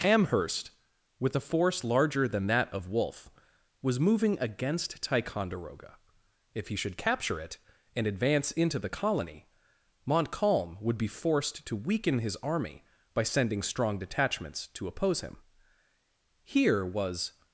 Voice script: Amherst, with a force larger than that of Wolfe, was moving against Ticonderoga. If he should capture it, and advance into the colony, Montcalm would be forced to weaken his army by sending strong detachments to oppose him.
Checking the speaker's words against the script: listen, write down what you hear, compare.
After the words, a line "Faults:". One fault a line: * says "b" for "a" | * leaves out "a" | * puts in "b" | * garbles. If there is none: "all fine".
Amherst, with a force larger than that of Wolfe, was moving against Ticonderoga. If he should capture it, and advance into the colony, Montcalm would be forced to weaken his army by sending strong detachments to oppose him. Here was
Faults:
* puts in "Here was"